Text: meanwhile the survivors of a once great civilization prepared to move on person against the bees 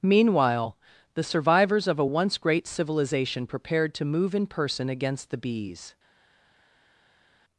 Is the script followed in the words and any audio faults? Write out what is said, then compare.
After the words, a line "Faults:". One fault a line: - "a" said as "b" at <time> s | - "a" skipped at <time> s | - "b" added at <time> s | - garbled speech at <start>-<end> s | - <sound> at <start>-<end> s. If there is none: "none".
meanwhile the survivors of a once great civilization prepared to move in person against the bees
Faults:
- "on" said as "in" at 4.3 s